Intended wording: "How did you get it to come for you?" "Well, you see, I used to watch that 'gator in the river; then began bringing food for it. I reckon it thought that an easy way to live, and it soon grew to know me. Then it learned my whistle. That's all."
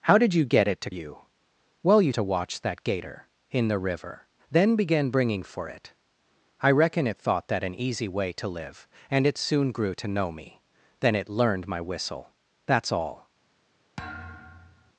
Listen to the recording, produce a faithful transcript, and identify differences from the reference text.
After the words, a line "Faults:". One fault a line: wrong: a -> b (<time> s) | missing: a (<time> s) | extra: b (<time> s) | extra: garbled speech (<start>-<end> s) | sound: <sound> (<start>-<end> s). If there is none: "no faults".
"How did you get it to you?" "Well, you to watch that 'gator in the river; then began bringing for it. I reckon it thought that an easy way to live, and it soon grew to know me. Then it learned my whistle. That's all."
Faults:
missing: come for (0.9 s)
missing: see I used (2.1 s)
missing: food (5.4 s)
sound: thud (14.0-14.9 s)